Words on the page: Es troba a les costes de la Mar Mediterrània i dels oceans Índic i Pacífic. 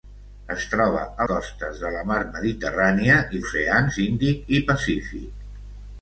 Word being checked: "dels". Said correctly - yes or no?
no